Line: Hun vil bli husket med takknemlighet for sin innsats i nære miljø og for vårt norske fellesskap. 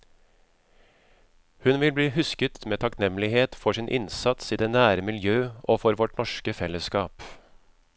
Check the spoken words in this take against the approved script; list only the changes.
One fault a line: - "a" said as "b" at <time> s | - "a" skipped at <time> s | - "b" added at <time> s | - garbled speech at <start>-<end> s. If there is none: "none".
- "det" added at 4.6 s